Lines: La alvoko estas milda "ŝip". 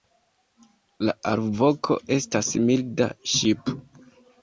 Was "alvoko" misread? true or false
false